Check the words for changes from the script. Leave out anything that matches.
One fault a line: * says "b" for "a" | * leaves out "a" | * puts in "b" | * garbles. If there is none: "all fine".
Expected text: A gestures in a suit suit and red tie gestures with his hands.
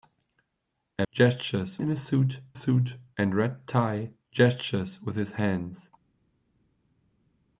all fine